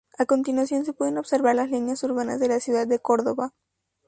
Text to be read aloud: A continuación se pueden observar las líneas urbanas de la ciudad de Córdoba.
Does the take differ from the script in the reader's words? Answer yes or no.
no